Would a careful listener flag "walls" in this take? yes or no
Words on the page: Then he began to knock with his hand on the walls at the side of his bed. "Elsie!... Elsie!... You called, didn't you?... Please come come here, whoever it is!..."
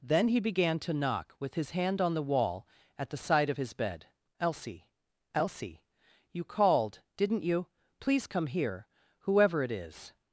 yes